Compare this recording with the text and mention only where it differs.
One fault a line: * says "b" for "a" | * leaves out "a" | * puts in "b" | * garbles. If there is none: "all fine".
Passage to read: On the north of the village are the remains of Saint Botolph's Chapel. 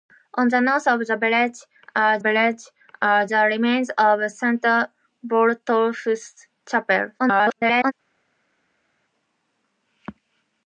* puts in "village are"
* garbles